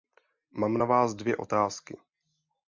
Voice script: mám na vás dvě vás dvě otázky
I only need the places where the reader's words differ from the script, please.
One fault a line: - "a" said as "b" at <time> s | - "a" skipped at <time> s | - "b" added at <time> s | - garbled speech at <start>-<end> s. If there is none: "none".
- "vás dvě" skipped at 1.4 s